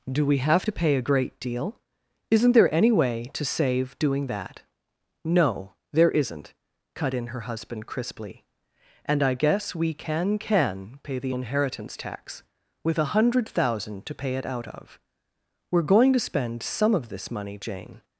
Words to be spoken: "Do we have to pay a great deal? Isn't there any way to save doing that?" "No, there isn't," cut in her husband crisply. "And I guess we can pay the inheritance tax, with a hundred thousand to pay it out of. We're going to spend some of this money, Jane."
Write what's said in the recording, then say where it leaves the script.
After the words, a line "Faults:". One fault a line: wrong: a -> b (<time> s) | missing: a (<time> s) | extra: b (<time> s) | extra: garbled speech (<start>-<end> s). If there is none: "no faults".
"Do we have to pay a great deal? Isn't there any way to save doing that?" "No, there isn't," cut in her husband crisply. "And I guess we can can pay the inheritance tax, with a hundred thousand to pay it out of. We're going to spend some of this money, Jane."
Faults:
extra: can (10.4 s)